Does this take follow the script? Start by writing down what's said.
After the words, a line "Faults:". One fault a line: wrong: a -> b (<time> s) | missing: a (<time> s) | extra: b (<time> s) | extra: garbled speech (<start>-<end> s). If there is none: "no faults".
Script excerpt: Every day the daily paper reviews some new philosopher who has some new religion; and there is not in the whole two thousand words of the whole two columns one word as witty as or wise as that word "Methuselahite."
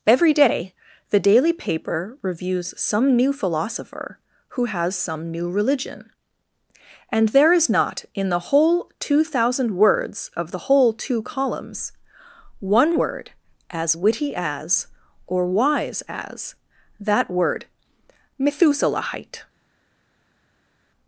Every day the daily paper reviews some new philosopher who has some new religion; and there is not in the whole two thousand words of the whole two columns one word as witty as or wise as that word "Methuselahite."
Faults:
no faults